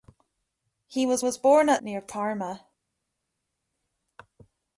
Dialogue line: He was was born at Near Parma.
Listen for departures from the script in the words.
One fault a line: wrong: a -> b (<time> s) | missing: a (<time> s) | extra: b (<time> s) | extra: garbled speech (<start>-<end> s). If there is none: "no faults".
no faults